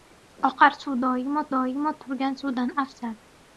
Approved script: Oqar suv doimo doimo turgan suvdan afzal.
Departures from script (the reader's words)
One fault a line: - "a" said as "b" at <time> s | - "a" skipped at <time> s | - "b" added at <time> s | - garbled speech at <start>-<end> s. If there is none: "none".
none